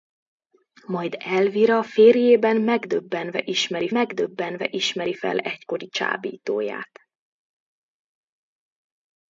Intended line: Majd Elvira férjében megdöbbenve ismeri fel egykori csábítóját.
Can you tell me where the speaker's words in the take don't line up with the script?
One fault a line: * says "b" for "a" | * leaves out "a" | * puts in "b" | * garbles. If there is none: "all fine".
* puts in "megdöbbenve ismeri"